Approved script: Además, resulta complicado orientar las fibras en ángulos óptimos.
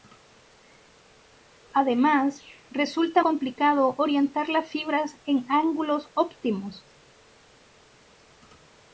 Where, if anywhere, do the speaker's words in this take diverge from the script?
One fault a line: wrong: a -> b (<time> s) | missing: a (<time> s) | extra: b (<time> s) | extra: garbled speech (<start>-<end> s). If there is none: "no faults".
no faults